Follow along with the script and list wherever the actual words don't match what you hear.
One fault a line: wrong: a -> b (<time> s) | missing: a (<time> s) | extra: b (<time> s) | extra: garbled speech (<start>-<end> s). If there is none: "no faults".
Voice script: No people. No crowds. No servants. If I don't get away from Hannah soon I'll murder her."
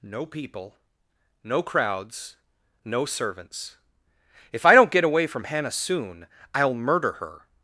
no faults